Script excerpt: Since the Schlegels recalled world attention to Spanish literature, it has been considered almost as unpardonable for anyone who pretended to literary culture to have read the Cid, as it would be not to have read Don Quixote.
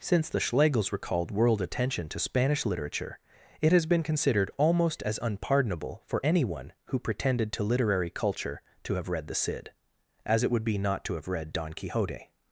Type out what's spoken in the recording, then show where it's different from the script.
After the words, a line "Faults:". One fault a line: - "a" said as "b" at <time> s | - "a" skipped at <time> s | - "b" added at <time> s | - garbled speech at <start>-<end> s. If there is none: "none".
Since the Schlegels recalled world attention to Spanish literature, it has been considered almost as unpardonable for anyone who pretended to literary culture to have read the Cid, as it would be not to have read Don Quixote.
Faults:
none